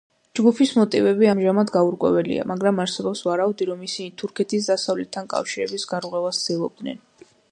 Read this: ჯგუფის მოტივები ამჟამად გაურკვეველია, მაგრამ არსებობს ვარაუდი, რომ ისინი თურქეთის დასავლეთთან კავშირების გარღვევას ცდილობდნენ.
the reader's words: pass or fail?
pass